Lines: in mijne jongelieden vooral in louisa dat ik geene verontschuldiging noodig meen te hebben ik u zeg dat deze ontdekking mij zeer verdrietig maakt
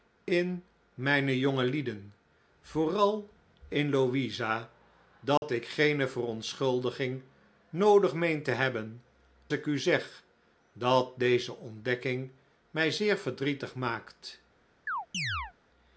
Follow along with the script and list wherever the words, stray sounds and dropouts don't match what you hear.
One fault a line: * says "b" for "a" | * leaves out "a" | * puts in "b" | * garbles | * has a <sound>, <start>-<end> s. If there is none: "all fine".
* has a dropout, 5.4-5.4 s
* has a chirp, 14.9-15.5 s